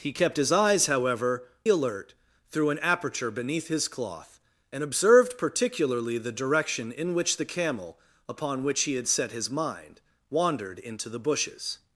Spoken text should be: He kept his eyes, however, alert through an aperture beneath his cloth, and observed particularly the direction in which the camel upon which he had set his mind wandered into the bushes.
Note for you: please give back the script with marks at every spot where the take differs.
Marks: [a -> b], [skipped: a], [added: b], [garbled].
He kept his eyes, however, alert through an aperture beneath his cloth, and observed particularly the direction in which the camel upon which he had set his mind wandered into the bushes.